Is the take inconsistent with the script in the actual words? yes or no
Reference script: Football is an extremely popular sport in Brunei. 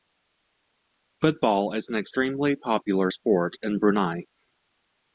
no